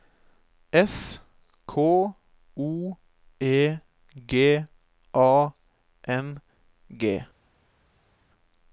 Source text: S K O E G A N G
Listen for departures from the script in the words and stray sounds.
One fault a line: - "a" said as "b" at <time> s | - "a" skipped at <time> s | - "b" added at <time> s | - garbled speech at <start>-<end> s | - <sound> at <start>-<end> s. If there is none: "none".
none